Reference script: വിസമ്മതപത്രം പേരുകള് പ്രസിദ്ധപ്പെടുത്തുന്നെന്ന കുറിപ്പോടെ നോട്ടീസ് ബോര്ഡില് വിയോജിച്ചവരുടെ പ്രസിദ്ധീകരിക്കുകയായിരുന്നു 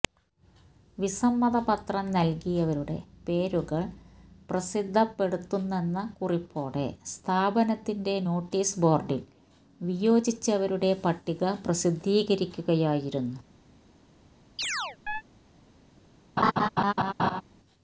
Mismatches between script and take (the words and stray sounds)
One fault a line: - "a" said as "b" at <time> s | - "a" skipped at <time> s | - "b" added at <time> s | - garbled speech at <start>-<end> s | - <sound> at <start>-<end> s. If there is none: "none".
- "നല്കിയവരുടെ" added at 2.1 s
- "സ്ഥാപനത്തിന്റെ" added at 7.0 s
- "പട്ടിക" added at 11.0 s
- chirp at 14.6-15.2 s
- laugh at 16.4-17.4 s